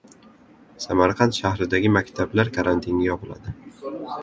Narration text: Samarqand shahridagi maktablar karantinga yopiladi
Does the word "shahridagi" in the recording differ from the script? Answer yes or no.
no